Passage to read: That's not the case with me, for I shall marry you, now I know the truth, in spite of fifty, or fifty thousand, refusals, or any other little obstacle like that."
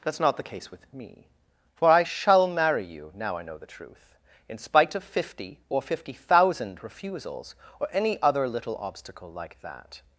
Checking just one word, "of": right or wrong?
right